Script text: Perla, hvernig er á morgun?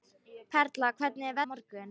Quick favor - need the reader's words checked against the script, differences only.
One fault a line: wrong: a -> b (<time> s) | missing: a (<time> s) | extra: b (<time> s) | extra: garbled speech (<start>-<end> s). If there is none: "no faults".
no faults